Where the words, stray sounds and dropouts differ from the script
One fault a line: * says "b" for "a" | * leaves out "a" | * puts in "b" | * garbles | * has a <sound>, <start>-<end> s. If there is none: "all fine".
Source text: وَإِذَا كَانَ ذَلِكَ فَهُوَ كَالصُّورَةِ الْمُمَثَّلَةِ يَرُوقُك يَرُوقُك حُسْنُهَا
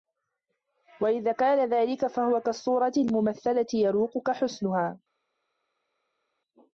* leaves out "يَرُوقُك"